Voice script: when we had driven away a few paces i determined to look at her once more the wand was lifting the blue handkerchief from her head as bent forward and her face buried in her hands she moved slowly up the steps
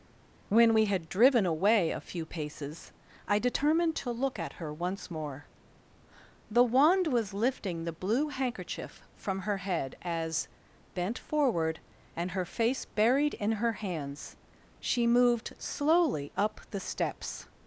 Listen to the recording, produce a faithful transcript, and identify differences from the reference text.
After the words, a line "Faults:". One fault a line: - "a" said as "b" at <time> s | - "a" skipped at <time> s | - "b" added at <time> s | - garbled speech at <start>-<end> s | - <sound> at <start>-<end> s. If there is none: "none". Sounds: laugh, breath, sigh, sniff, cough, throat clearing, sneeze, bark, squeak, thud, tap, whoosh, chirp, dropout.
when we had driven away a few paces i determined to look at her once more the wand was lifting the blue handkerchief from her head as bent forward and her face buried in her hands she moved slowly up the steps
Faults:
none